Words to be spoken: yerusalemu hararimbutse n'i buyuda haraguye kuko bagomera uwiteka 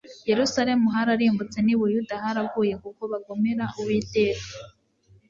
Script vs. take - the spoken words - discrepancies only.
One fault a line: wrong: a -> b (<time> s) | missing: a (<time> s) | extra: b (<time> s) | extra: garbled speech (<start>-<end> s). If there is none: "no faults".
no faults